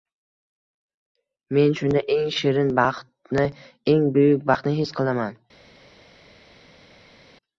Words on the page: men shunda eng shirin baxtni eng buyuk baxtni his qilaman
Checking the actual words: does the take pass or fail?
pass